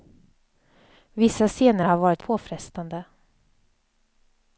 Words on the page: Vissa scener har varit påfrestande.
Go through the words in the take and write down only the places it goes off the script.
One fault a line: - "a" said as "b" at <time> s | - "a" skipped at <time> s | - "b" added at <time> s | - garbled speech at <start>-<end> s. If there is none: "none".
none